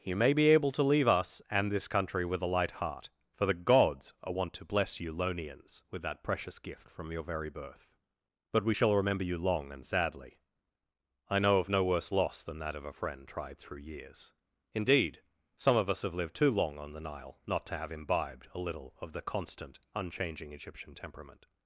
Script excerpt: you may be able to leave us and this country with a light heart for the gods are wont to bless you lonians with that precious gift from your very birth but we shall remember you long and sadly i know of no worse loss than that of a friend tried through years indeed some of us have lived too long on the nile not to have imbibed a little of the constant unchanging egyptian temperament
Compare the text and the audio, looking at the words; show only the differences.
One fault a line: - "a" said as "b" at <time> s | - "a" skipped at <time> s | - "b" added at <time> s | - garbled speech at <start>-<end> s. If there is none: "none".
none